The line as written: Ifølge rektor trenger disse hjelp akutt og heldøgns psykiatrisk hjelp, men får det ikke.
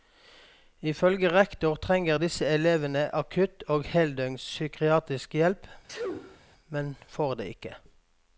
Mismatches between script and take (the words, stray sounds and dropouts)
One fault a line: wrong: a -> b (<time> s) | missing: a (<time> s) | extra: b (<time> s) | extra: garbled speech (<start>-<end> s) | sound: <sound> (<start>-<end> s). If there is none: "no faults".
wrong: hjelp -> elevene (2.5 s)
sound: sneeze (5.9-6.4 s)